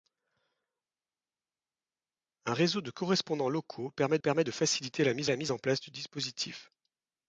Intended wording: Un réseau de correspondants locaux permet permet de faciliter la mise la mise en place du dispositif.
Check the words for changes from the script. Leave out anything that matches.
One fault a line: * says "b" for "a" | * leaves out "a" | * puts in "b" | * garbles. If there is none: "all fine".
all fine